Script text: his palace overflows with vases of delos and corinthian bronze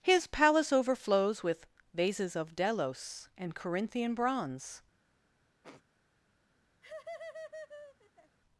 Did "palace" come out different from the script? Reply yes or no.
no